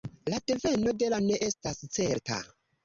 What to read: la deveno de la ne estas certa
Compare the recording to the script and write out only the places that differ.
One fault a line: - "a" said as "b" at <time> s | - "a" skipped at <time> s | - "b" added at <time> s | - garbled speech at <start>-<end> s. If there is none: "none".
none